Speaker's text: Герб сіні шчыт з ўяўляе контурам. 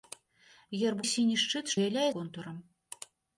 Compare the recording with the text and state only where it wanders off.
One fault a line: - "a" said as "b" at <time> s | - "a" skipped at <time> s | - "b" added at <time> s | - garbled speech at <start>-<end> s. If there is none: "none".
none